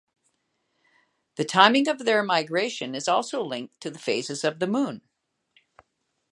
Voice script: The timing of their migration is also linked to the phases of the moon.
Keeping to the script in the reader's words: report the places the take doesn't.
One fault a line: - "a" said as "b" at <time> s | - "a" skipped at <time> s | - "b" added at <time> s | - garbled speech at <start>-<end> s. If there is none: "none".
none